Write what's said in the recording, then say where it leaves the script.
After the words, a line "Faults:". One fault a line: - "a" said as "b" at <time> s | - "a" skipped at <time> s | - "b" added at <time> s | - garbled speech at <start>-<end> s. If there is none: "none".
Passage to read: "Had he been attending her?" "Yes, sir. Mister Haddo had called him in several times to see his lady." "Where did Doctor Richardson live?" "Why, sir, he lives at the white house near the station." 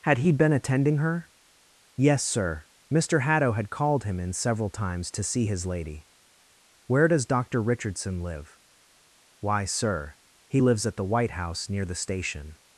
"Had he been attending her?" "Yes, sir. Mister Haddo had called him in several times to see his lady." "Where does Doctor Richardson live?" "Why, sir, he lives at the white house near the station."
Faults:
- "did" said as "does" at 7.1 s